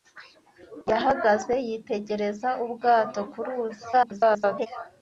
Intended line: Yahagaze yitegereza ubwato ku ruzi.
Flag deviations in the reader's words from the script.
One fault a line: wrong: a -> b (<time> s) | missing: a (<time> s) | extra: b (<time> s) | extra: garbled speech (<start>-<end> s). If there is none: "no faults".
extra: garbled speech (3.9-4.7 s)